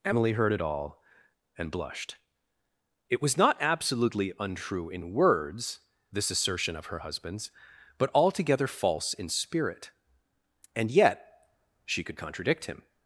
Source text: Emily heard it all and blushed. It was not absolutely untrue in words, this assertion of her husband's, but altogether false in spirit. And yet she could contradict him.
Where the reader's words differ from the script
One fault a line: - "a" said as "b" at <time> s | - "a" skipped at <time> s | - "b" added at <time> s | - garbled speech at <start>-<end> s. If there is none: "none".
none